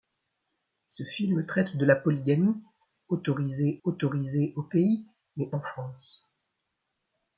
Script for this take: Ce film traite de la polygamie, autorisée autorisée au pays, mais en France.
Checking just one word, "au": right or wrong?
right